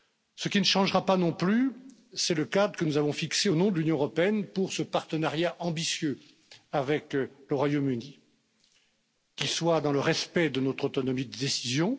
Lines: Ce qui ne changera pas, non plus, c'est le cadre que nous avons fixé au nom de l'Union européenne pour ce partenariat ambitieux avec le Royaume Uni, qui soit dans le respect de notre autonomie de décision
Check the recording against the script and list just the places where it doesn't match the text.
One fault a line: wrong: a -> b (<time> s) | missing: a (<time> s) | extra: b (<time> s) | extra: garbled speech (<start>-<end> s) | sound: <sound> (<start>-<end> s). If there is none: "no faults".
no faults